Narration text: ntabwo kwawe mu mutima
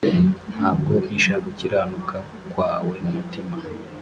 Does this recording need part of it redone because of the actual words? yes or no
yes